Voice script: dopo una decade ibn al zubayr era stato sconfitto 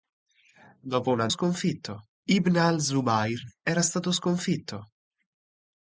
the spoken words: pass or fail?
fail